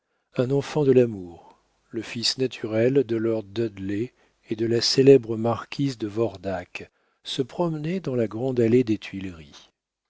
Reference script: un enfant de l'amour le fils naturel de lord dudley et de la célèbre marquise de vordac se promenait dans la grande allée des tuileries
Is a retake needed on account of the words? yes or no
no